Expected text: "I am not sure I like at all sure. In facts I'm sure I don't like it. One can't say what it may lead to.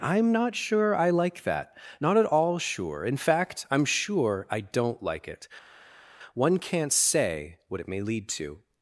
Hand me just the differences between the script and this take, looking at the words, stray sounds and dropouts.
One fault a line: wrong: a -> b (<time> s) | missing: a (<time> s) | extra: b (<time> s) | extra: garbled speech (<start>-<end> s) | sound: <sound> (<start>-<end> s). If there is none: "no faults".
extra: that not (1.4 s)
wrong: facts -> fact (3.2 s)